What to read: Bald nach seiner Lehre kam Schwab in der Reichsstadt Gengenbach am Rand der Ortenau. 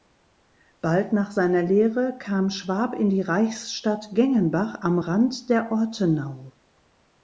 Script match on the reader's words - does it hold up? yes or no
no